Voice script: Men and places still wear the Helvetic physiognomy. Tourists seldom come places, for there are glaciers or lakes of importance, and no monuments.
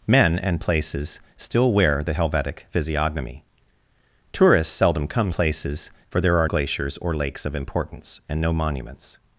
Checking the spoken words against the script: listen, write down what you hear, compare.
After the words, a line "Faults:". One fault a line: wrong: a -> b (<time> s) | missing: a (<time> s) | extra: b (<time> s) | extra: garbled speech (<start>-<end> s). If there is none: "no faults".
Men and places still wear the Helvetic physiognomy. Tourists seldom come places, for there are glaciers or lakes of importance, and no monuments.
Faults:
no faults